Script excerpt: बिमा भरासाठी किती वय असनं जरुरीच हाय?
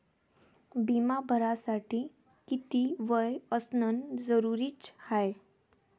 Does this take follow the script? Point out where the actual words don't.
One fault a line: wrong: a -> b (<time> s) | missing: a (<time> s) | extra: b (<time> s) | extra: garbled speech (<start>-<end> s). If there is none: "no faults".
no faults